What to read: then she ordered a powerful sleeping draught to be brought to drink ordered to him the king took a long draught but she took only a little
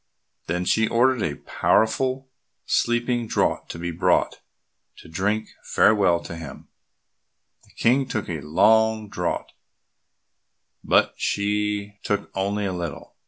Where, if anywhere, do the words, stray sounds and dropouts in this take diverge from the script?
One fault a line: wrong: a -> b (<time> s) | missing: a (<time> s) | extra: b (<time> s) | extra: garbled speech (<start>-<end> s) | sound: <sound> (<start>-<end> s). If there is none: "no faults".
wrong: ordered -> farewell (5.6 s)